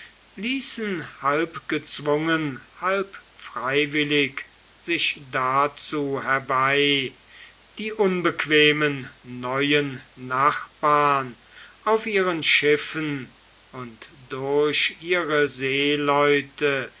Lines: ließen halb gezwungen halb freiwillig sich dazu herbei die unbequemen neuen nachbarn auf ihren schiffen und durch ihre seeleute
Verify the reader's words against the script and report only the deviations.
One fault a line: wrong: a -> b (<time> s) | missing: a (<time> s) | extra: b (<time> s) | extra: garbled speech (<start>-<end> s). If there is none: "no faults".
no faults